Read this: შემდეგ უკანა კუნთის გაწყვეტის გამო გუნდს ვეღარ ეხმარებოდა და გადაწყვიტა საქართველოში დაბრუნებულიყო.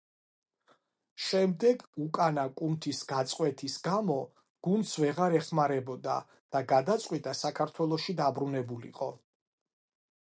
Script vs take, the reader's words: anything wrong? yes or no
no